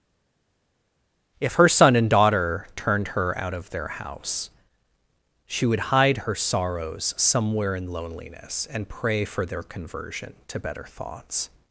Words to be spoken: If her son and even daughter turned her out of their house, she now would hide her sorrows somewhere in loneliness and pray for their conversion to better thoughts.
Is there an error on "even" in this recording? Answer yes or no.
yes